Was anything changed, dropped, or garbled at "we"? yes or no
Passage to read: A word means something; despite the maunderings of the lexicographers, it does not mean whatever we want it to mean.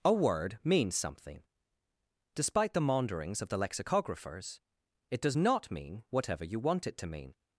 yes